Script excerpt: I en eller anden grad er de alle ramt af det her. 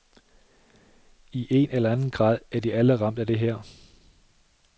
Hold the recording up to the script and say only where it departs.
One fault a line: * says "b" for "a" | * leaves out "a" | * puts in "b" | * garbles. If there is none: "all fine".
all fine